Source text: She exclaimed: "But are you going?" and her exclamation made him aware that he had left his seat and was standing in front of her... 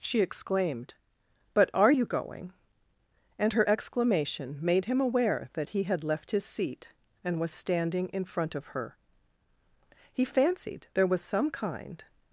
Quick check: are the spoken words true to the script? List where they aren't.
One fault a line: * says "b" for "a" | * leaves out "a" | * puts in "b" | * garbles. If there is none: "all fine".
* puts in "He fancied there was some kind"